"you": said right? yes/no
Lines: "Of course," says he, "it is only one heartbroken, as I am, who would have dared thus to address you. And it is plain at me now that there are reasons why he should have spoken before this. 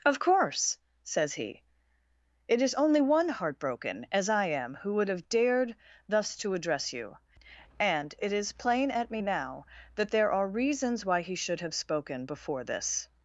yes